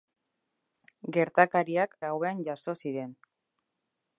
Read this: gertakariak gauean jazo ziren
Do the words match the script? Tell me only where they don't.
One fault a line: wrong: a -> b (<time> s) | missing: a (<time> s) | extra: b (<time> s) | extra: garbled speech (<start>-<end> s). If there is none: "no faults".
no faults